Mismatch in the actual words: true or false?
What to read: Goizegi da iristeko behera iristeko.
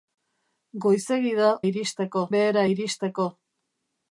false